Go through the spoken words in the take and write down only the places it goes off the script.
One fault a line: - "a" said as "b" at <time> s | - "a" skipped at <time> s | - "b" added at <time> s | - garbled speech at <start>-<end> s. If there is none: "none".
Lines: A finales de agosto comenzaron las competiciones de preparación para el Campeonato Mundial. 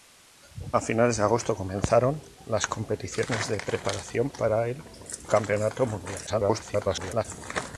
- garbled speech at 6.3-7.3 s